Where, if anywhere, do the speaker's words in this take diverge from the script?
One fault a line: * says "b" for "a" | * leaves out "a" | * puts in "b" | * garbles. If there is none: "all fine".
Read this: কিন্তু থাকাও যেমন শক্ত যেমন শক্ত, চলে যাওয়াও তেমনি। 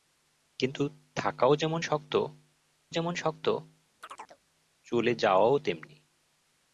all fine